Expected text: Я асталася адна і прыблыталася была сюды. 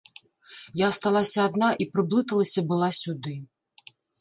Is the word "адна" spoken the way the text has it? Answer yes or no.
yes